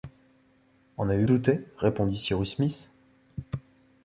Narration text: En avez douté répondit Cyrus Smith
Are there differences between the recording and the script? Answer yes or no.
no